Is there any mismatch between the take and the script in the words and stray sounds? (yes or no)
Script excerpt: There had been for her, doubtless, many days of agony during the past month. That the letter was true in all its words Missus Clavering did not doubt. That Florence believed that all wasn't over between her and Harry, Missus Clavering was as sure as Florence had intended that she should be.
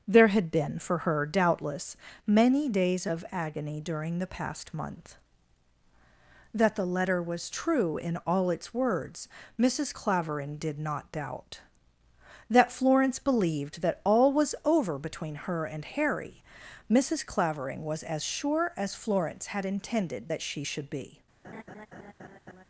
yes